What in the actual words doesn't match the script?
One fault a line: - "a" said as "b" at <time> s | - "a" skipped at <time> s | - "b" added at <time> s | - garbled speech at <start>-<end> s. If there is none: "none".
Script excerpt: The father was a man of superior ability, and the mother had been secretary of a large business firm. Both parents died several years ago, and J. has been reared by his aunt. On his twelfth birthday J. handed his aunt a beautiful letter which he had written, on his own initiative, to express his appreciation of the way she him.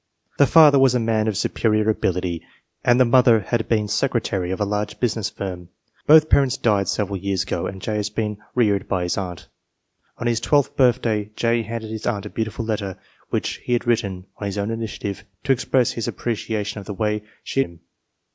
none